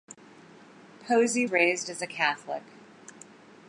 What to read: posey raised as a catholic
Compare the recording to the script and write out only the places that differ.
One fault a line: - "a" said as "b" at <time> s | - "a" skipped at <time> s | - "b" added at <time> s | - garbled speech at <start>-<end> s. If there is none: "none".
none